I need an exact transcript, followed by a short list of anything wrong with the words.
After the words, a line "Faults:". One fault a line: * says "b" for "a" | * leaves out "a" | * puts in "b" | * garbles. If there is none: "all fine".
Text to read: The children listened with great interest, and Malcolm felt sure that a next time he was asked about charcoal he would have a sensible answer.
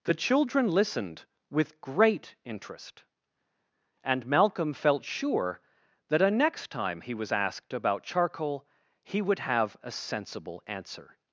The children listened with great interest, and Malcolm felt sure that a next time he was asked about charcoal he would have a sensible answer.
Faults:
all fine